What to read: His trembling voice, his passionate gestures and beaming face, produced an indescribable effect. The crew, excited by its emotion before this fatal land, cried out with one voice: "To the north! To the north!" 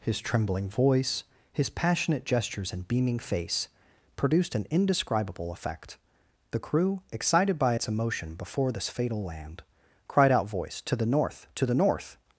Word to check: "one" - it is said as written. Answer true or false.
false